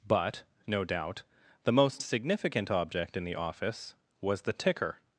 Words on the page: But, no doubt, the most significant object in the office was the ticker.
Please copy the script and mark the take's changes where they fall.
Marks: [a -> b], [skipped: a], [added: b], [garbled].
But, no doubt, the most significant object in the office was the ticker.